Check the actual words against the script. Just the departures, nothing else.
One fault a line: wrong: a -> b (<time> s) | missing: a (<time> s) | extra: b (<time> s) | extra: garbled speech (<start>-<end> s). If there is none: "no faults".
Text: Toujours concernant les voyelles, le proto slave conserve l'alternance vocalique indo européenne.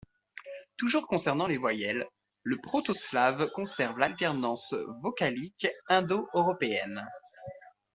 no faults